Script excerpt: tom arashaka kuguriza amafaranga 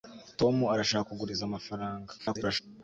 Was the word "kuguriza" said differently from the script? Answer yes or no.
no